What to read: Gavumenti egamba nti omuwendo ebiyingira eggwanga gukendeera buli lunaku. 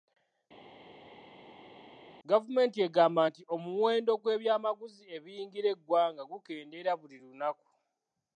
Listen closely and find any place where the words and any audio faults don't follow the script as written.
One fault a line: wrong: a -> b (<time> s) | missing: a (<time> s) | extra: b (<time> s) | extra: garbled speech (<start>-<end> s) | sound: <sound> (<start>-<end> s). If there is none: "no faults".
extra: gw'ebyamaguzi (4.2 s)